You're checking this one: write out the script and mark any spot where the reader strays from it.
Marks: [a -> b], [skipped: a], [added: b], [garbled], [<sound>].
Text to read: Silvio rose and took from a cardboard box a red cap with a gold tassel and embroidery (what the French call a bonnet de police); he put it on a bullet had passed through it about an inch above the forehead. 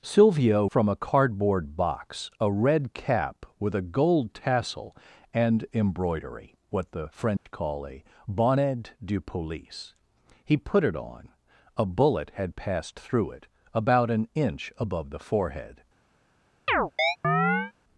Silvio [skipped: rose and took] from a cardboard box a red cap with a gold tassel and embroidery (what the French [dropout] call a bonnet de police); he put it on a bullet had passed through it about an inch above the forehead. [chirp]